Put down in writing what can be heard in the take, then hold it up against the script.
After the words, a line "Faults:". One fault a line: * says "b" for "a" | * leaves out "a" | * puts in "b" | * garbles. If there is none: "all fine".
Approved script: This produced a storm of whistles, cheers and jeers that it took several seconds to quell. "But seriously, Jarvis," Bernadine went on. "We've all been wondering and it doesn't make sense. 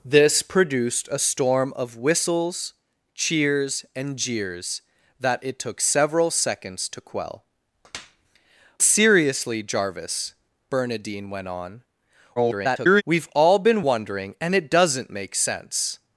This produced a storm of whistles, cheers and jeers that it took several seconds to quell. "Seriously, Jarvis," Bernadine went on. [garbled] "We've all been wondering and it doesn't make sense.
Faults:
* leaves out "But"
* garbles